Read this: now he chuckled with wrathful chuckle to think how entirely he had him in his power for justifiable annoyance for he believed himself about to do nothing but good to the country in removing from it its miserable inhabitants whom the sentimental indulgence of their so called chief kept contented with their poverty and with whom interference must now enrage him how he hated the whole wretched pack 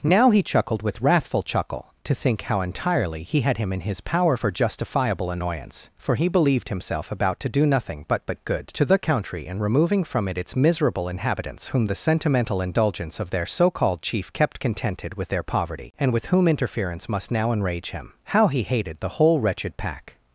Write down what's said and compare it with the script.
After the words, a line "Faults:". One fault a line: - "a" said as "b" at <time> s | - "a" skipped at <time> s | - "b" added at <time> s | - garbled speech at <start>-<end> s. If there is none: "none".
now he chuckled with wrathful chuckle to think how entirely he had him in his power for justifiable annoyance for he believed himself about to do nothing but but good to the country in removing from it its miserable inhabitants whom the sentimental indulgence of their so called chief kept contented with their poverty and with whom interference must now enrage him how he hated the whole wretched pack
Faults:
- "but" added at 8.2 s